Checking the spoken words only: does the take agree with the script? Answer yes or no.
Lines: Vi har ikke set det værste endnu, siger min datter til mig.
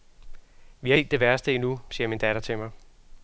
no